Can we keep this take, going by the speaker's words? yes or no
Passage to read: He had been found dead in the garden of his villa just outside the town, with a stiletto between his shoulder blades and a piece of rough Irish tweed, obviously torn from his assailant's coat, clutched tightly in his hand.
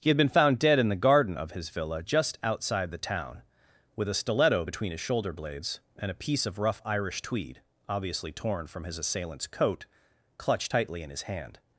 yes